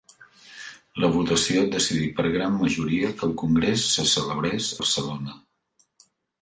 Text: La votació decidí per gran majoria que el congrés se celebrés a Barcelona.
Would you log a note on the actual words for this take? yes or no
yes